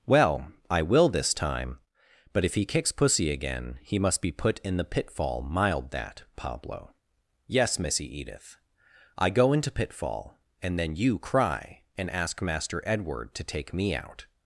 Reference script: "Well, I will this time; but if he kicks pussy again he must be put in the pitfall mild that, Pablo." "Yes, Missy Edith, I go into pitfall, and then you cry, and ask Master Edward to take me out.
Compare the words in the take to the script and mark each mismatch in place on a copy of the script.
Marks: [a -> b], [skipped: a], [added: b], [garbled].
"Well, I will this time; but if he kicks pussy again he must be put in the pitfall mild that, Pablo." "Yes, Missy Edith, I go into pitfall, and then you cry, and ask Master Edward to take me out.